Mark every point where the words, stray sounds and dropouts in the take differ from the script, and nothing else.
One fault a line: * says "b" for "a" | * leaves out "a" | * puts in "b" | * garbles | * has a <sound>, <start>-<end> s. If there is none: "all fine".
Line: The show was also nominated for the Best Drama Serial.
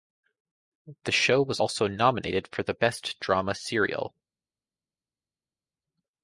all fine